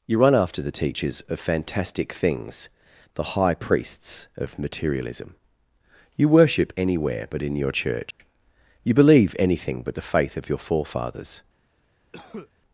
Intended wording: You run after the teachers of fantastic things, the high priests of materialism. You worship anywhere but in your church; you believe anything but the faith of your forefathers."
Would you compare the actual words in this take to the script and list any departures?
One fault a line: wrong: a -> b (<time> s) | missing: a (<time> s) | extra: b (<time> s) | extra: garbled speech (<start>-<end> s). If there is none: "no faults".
no faults